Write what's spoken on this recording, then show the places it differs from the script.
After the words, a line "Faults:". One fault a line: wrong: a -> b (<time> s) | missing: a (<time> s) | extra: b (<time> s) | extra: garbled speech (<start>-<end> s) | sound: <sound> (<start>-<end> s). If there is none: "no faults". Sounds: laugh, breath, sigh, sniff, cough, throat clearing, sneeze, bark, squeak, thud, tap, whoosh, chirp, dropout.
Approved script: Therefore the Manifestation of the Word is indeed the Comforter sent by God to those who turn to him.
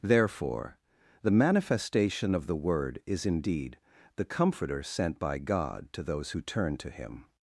Therefore the Manifestation of the Word is indeed the Comforter sent by God to those who turn to him.
Faults:
no faults